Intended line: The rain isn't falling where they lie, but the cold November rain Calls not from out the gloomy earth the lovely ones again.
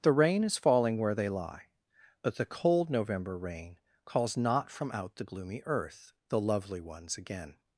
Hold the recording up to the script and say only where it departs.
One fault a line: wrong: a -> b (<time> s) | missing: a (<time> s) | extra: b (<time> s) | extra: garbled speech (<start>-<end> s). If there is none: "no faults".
wrong: isn't -> is (0.4 s)